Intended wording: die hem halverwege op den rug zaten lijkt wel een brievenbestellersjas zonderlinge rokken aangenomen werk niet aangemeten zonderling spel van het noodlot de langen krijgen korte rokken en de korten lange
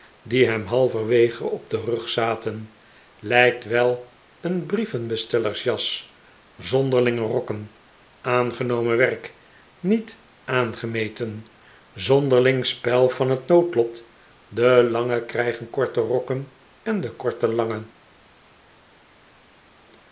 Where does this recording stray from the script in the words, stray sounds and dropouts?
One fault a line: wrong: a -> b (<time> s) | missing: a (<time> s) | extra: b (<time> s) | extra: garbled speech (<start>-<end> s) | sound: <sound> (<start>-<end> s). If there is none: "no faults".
no faults